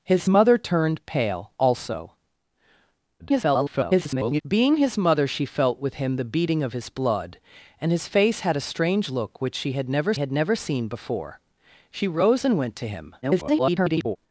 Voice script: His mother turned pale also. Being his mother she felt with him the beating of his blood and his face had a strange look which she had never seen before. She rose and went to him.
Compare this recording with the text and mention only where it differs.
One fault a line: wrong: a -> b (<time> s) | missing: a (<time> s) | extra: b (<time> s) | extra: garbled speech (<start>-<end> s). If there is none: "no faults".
extra: garbled speech (3.2-4.4 s)
extra: had never (10.2 s)
extra: garbled speech (13.2-14.2 s)